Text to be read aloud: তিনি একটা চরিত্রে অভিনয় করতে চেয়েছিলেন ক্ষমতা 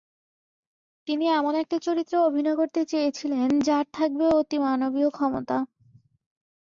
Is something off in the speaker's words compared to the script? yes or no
yes